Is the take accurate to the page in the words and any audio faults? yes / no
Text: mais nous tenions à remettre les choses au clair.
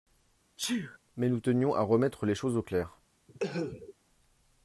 no